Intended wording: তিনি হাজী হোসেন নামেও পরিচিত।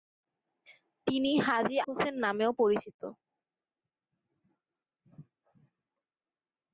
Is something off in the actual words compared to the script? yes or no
no